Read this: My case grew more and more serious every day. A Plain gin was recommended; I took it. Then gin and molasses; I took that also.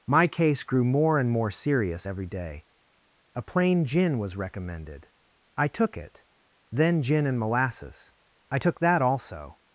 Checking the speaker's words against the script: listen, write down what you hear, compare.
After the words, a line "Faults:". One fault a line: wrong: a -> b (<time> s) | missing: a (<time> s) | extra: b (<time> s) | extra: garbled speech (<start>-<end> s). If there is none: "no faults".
My case grew more and more serious every day. A Plain gin was recommended; I took it. Then gin and molasses; I took that also.
Faults:
no faults